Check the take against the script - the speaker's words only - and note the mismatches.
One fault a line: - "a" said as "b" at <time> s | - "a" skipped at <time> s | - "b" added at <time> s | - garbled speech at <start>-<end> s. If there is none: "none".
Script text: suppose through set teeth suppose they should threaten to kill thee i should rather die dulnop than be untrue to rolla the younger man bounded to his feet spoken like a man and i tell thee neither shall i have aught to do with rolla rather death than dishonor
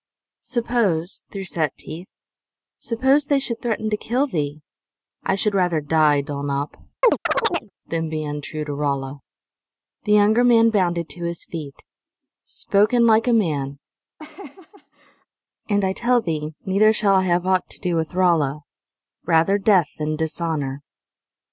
none